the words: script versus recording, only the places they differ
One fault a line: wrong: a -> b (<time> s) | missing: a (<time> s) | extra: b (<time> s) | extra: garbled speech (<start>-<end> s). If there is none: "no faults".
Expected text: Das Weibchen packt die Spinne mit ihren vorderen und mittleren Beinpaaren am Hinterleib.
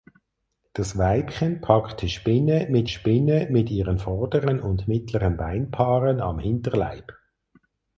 extra: Spinne mit (2.9 s)